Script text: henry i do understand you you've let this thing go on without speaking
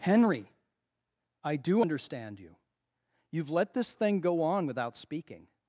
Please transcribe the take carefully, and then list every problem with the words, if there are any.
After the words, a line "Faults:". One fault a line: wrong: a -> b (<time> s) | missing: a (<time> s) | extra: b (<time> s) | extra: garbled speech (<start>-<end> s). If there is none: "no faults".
henry i do understand you you've let this thing go on without speaking
Faults:
no faults